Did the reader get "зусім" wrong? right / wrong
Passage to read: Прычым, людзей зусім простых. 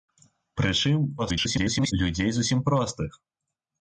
right